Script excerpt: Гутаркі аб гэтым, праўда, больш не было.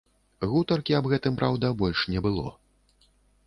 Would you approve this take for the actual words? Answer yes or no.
yes